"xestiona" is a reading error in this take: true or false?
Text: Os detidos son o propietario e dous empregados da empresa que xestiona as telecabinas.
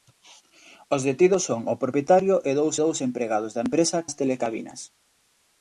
true